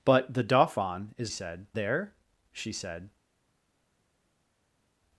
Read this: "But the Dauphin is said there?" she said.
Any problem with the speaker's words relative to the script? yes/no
no